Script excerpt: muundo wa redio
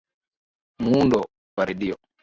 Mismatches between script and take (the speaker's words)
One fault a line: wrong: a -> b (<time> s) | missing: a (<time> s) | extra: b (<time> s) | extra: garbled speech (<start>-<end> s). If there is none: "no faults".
no faults